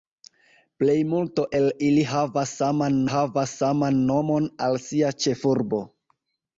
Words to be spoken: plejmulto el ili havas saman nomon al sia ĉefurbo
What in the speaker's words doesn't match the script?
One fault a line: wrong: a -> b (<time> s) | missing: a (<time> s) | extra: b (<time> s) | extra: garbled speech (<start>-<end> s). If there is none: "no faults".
extra: havas saman (3.1 s)